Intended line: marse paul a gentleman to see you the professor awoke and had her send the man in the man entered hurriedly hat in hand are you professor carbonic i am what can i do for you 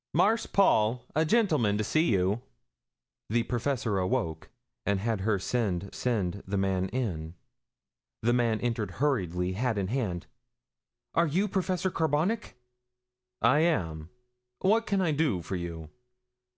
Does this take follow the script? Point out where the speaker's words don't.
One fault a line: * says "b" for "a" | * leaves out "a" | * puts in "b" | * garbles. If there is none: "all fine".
* puts in "send"